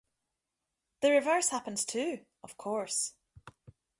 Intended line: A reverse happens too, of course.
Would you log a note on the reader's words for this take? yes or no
yes